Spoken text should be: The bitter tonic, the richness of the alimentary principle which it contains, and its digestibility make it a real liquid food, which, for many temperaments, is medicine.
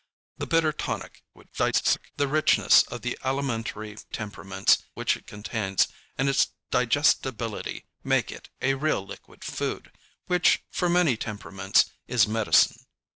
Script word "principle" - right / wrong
wrong